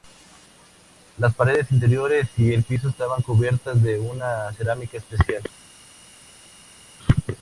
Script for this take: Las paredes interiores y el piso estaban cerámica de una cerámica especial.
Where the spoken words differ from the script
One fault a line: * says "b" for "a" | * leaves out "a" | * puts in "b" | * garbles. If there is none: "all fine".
* says "cubiertas" for "cerámica"